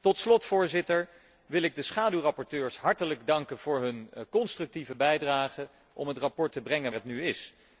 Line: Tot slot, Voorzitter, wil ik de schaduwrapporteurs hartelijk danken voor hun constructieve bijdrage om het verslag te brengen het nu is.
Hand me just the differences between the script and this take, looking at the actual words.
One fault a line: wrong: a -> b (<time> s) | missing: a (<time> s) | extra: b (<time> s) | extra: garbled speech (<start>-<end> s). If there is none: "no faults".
no faults